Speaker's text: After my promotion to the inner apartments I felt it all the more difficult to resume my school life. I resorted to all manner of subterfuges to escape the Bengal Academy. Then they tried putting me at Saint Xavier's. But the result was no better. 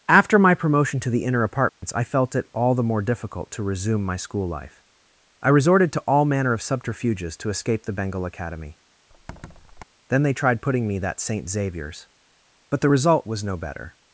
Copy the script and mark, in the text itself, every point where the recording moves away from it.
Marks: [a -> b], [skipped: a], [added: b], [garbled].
After my promotion to the inner apartments I felt it all the more difficult to resume my school life. I resorted to all manner of subterfuges to escape the Bengal Academy. Then they tried putting me [at -> that] Saint Xavier's. But the result was no better.